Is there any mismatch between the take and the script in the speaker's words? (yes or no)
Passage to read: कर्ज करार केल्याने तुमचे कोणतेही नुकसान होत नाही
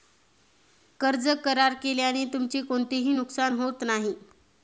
no